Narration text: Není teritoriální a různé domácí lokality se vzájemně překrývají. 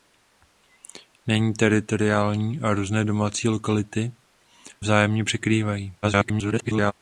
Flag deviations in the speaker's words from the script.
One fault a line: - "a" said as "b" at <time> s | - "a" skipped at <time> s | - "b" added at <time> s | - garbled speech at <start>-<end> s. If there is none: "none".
- "se" skipped at 4.1 s
- garbled speech at 6.0-6.9 s